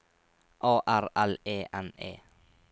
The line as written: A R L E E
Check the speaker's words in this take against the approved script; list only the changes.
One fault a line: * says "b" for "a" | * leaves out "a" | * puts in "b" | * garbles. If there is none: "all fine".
* puts in "N"